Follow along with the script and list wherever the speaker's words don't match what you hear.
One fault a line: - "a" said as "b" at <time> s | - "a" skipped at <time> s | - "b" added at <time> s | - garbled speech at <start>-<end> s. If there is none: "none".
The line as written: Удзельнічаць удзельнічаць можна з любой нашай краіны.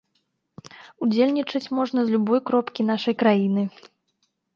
- "удзельнічаць" skipped at 1.7 s
- "кропкі" added at 2.5 s